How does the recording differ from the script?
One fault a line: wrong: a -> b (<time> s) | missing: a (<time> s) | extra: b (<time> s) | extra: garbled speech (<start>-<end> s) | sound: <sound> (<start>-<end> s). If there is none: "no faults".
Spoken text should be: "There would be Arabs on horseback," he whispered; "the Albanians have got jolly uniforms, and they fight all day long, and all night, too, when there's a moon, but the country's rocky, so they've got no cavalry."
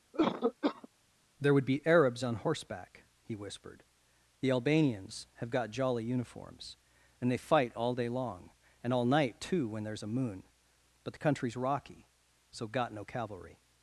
sound: cough (0.1-0.9 s)
missing: they've (12.7 s)